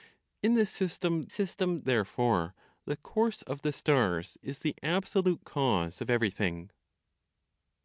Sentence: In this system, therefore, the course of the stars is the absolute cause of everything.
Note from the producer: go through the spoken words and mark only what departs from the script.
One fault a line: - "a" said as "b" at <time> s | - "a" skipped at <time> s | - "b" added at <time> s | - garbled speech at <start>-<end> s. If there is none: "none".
- "system" added at 1.3 s